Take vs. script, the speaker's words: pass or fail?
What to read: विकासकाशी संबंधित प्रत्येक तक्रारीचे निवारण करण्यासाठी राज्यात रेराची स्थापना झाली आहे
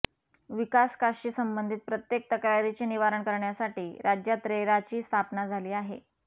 pass